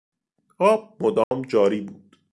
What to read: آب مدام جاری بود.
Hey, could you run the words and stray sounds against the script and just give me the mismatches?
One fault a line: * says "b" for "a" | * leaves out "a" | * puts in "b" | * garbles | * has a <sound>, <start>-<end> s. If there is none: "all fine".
* has a dropout, 1.2-1.3 s